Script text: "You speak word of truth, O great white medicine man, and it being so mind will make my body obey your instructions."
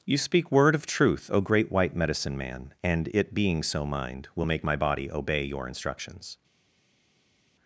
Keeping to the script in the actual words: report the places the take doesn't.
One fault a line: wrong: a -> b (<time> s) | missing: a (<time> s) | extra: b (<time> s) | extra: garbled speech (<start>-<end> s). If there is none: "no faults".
no faults